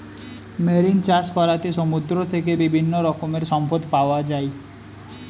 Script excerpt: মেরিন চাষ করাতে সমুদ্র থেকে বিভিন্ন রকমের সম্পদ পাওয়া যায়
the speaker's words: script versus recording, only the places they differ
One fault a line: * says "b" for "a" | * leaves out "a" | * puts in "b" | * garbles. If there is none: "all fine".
all fine